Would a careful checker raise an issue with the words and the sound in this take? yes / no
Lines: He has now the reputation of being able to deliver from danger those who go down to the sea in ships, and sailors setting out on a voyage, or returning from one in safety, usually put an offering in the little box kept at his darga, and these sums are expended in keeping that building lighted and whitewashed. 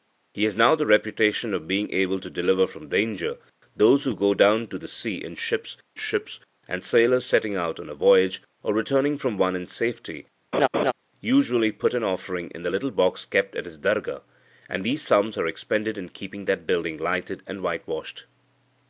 yes